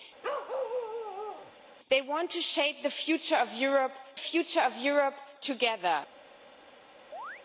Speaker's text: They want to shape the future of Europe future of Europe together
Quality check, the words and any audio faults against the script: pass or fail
fail